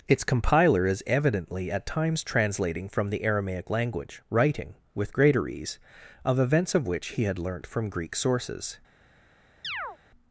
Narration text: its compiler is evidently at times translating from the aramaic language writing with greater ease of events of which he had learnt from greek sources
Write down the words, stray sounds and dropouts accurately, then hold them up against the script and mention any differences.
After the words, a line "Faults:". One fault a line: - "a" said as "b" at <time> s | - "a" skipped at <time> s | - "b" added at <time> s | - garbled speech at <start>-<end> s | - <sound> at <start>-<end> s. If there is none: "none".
its compiler is evidently at times translating from the aramaic language writing with greater ease of events of which he had learnt from greek sources
Faults:
- chirp at 9.6-10.0 s